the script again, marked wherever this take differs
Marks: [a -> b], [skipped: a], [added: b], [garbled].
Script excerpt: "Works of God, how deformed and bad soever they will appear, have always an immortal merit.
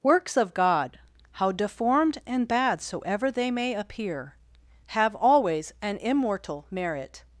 "Works of God, how deformed and bad soever they [will -> may] appear, have always an immortal merit.